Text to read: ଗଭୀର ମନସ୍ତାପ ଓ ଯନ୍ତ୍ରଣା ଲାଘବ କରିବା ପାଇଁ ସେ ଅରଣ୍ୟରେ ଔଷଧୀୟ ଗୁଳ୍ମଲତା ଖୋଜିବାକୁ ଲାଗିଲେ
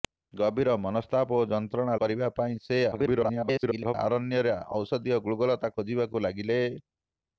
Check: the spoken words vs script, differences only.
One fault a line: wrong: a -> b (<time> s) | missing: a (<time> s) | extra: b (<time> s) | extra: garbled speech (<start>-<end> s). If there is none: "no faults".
missing: ଲାଘବ (2.0 s)
extra: garbled speech (2.9-3.9 s)